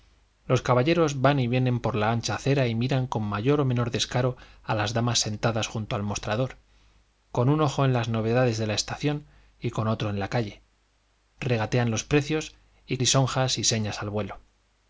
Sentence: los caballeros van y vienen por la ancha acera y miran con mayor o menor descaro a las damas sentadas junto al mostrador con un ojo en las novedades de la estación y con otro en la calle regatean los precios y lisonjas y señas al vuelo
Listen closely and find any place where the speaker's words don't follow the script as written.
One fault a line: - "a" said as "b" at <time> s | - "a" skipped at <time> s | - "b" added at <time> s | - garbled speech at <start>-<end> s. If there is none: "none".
none